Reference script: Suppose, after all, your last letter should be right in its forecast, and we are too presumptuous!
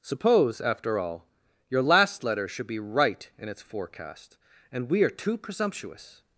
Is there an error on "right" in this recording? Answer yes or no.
no